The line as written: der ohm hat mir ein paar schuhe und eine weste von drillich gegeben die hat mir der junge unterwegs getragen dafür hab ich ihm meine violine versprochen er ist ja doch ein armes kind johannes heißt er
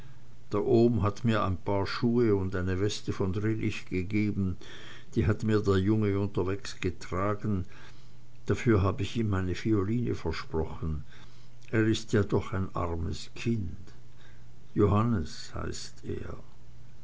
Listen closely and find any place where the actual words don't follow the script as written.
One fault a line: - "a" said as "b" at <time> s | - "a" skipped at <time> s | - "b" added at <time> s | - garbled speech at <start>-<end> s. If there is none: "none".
none